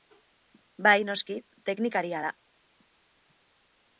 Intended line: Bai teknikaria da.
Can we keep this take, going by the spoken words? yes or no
no